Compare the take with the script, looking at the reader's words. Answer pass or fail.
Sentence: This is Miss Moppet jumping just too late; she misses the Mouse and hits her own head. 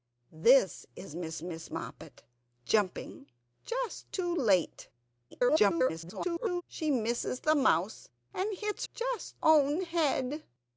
fail